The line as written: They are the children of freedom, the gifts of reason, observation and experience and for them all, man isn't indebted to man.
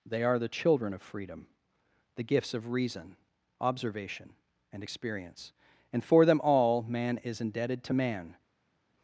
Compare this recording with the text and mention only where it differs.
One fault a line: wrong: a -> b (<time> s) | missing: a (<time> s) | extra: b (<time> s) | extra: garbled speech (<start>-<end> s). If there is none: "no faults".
wrong: isn't -> is (7.2 s)